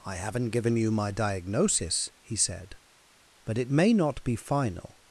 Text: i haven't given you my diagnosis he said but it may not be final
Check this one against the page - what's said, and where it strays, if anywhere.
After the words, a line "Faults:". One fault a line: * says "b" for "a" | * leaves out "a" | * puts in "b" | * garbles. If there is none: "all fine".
i haven't given you my diagnosis he said but it may not be final
Faults:
all fine